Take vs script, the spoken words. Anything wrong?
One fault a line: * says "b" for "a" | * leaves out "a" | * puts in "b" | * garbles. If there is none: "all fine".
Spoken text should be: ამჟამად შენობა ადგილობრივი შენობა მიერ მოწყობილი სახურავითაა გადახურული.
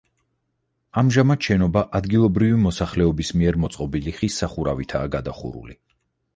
* says "მოსახლეობის" for "შენობა"
* puts in "ხის"